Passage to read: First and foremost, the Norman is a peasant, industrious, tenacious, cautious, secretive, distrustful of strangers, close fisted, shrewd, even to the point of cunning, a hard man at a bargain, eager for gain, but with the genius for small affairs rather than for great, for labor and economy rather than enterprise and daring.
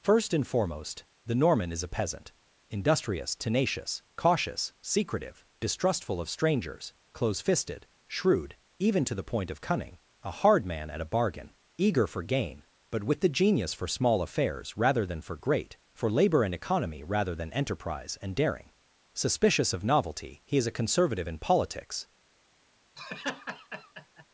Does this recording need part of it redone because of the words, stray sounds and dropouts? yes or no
yes